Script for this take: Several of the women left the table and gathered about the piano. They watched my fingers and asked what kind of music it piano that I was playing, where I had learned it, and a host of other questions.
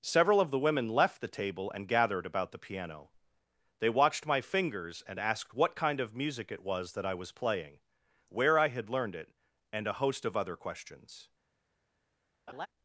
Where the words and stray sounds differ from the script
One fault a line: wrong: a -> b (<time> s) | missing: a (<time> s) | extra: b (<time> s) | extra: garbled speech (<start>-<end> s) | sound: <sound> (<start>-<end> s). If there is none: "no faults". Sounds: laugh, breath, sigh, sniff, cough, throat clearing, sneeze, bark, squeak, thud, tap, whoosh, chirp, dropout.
wrong: piano -> was (6.6 s)
sound: laugh (12.5-12.7 s)